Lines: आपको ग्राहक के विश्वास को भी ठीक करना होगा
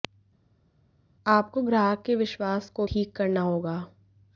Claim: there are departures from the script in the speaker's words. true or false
true